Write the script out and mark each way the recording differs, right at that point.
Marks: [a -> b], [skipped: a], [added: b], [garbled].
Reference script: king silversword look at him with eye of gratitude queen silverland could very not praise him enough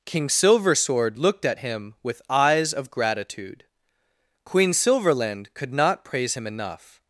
king silversword [look -> looked] at him with [eye -> eyes] of gratitude queen silverland could [skipped: very] not praise him enough